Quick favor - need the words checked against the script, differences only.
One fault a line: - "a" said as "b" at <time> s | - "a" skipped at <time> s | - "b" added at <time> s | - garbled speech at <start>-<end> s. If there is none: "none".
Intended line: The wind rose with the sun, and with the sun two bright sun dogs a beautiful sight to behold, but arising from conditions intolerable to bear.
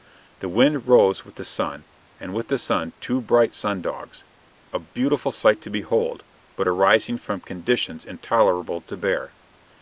none